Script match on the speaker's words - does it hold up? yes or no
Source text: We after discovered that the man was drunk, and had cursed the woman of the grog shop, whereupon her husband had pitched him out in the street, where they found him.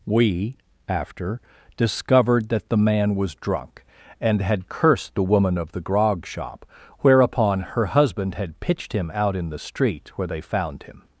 yes